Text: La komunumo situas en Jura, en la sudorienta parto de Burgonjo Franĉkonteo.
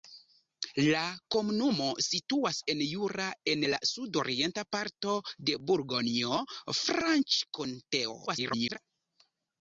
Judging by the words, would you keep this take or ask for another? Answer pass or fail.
fail